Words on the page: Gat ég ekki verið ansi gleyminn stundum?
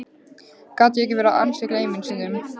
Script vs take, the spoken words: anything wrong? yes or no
no